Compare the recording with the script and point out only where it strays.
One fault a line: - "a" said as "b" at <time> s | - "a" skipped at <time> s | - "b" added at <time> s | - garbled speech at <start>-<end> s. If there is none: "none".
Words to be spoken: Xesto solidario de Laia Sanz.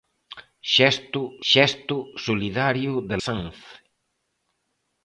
- "xesto" added at 1.5 s
- "Laia" skipped at 3.2 s